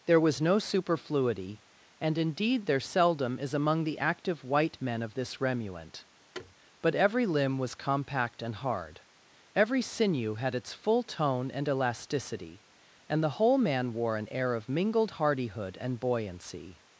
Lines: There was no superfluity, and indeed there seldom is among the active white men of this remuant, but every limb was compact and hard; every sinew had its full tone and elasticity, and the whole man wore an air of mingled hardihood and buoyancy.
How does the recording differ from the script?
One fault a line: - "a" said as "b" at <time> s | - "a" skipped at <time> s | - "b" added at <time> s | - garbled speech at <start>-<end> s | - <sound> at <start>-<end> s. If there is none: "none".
- thud at 6.3-6.5 s